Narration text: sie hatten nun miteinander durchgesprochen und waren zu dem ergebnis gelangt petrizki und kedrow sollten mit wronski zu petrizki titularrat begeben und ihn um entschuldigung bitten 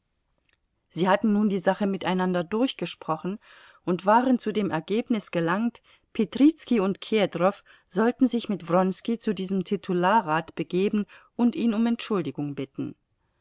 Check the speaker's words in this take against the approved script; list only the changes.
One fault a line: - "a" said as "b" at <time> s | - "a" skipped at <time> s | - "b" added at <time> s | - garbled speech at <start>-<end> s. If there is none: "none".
- "die sache" added at 1.5 s
- "sich" added at 8.3 s
- "petrizki" said as "diesem" at 9.3 s